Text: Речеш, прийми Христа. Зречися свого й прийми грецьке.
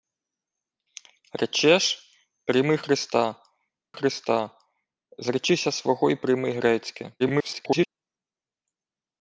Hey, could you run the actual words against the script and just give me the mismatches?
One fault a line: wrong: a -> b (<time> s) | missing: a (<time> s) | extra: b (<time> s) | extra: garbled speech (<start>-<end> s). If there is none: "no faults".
extra: Христа (3.9 s)
extra: garbled speech (7.2-7.9 s)